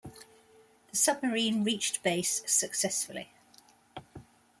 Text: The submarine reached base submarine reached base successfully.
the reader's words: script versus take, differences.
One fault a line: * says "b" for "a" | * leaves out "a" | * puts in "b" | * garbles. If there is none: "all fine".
* leaves out "submarine reached base"